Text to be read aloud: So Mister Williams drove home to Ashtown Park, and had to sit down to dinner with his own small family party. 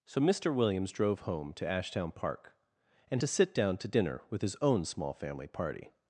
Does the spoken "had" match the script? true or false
false